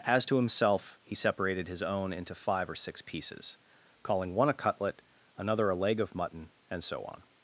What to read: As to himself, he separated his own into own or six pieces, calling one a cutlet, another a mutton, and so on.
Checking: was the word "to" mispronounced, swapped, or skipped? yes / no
no